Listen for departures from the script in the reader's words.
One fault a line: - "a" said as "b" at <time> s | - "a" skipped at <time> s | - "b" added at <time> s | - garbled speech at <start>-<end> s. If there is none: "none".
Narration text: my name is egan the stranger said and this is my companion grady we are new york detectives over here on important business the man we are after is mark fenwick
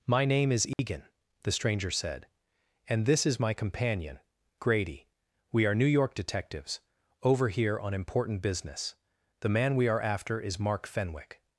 none